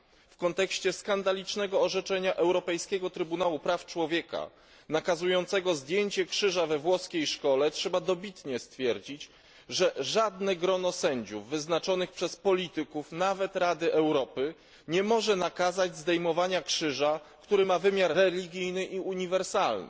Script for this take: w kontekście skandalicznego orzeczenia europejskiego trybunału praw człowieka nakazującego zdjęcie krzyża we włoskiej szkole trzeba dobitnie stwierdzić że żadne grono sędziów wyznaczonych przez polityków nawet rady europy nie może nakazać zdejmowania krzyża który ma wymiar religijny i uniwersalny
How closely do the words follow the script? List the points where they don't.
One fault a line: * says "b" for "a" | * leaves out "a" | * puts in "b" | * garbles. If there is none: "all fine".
all fine